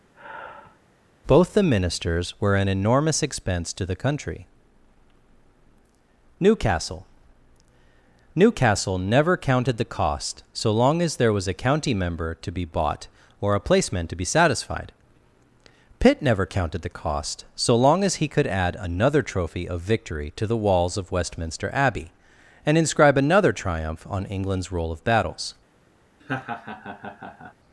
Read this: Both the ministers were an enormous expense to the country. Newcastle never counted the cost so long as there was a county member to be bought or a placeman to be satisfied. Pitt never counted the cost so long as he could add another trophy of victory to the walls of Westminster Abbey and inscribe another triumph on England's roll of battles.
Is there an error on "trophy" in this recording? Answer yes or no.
no